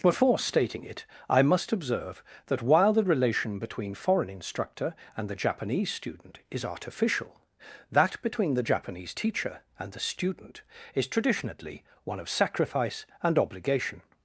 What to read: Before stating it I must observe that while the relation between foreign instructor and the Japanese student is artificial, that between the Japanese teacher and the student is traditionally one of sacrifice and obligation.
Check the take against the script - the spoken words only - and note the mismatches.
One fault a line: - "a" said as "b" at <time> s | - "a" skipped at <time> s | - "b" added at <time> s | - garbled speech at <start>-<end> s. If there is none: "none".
none